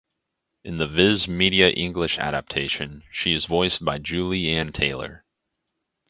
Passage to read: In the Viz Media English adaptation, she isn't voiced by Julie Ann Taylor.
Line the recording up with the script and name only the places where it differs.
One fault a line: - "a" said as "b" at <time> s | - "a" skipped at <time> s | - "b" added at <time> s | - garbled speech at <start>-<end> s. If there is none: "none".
- "isn't" said as "is" at 3.3 s